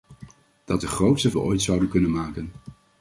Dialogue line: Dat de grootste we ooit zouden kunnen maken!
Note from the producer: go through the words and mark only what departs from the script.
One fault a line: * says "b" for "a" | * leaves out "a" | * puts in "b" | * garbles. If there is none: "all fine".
all fine